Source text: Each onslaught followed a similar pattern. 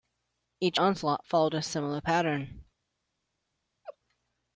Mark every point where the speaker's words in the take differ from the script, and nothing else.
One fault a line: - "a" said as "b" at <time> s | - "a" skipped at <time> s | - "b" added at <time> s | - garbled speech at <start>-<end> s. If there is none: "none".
none